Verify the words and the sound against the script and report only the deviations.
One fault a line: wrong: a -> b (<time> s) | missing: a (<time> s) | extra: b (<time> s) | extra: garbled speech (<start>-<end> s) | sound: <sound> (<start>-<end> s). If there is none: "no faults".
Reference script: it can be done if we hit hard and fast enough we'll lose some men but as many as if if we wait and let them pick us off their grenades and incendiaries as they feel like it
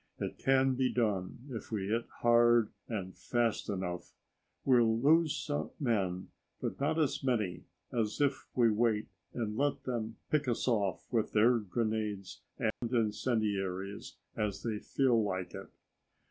extra: not (6.8 s)
missing: if (8.5 s)
extra: with (11.1 s)
sound: dropout (12.7-12.8 s)